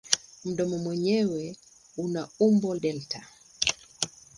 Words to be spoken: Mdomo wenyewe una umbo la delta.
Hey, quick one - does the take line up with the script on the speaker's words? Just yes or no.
no